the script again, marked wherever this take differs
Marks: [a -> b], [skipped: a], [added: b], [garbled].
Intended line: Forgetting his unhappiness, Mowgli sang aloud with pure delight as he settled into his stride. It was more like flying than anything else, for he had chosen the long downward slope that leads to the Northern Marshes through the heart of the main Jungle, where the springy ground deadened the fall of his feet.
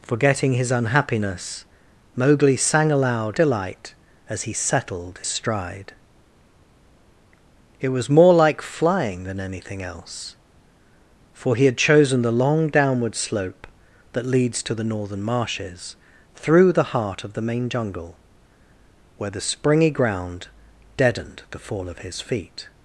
Forgetting his unhappiness, Mowgli sang aloud [skipped: with pure] delight as he settled [skipped: into his] stride. It was more like flying than anything else, for he had chosen the long downward slope that leads to the Northern Marshes through the heart of the main Jungle, where the springy ground deadened the fall of his feet.